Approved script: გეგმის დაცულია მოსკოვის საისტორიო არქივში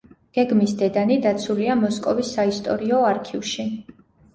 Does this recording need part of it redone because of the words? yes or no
yes